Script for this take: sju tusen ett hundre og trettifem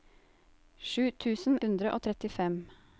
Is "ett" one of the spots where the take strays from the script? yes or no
yes